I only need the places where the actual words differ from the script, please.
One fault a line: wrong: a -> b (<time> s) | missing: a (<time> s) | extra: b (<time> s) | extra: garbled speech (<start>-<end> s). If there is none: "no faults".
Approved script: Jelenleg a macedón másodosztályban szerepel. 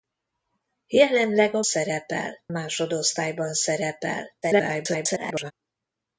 wrong: macedón -> szerepel (1.6 s)
extra: garbled speech (4.4-5.5 s)